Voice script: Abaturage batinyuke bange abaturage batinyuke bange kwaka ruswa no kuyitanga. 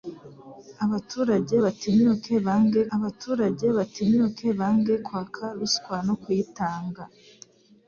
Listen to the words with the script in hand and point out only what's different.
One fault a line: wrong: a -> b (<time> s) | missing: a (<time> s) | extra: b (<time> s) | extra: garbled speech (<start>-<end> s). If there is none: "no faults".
no faults